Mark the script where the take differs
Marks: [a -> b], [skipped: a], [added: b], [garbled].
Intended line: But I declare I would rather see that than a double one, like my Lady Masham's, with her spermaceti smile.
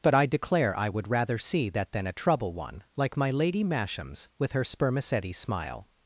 But I declare I would rather see that than a [double -> trouble] one, like my Lady Masham's, with her spermaceti smile.